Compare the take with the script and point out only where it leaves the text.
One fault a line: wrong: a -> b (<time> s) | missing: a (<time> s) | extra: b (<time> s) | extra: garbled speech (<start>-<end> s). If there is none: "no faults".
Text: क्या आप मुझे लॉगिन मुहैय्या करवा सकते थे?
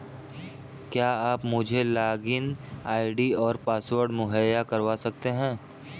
extra: आई.डी और पासवर्ड (2.9 s)
wrong: थे -> हैं (5.3 s)